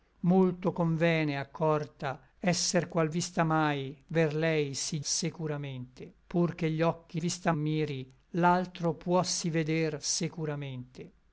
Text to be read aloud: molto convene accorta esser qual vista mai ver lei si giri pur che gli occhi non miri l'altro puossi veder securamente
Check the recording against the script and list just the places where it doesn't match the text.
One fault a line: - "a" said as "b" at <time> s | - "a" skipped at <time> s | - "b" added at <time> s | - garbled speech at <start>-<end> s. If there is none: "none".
- "giri" said as "securamente" at 5.0 s
- "non" said as "vista" at 7.2 s